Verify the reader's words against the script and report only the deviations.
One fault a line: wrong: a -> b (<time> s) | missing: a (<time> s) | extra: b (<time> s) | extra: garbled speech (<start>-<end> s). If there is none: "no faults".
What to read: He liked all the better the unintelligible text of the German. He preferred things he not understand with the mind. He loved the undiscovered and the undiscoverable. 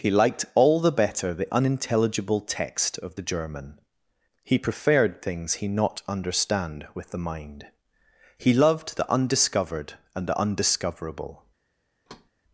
no faults